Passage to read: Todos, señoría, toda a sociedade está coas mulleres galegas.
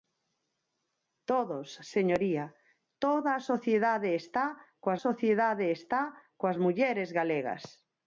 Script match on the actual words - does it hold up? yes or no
no